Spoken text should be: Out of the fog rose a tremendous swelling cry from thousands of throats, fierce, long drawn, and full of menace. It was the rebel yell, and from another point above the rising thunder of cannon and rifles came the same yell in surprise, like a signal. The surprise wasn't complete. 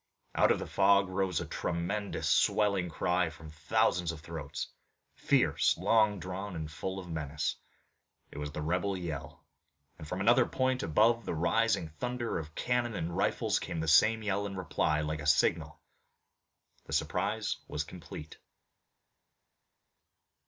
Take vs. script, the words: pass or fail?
fail